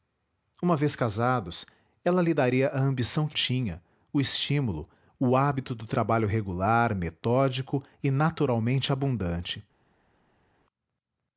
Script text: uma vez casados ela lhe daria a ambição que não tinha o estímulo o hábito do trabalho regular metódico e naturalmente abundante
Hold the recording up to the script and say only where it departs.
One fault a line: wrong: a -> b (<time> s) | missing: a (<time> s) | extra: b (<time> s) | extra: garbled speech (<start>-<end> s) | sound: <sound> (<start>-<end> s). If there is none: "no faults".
missing: não (3.4 s)